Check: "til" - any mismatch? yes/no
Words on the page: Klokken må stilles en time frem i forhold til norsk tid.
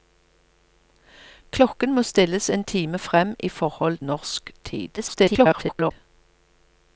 yes